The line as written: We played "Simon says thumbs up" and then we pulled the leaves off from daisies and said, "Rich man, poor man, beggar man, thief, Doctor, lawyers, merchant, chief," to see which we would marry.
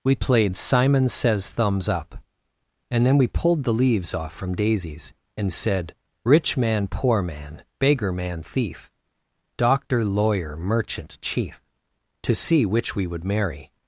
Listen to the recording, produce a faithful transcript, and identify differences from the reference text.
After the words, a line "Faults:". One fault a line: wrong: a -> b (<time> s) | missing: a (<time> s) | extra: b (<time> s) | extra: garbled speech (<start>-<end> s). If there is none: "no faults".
We played "Simon says thumbs up" and then we pulled the leaves off from daisies and said, "Rich man, poor man, beggar man, thief, Doctor, lawyer, merchant, chief," to see which we would marry.
Faults:
wrong: lawyers -> lawyer (10.0 s)